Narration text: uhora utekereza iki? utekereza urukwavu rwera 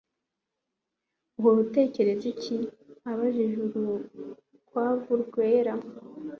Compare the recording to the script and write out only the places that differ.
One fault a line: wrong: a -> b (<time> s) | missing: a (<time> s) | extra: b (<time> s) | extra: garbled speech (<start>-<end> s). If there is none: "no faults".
wrong: utekereza -> abajije (3.1 s)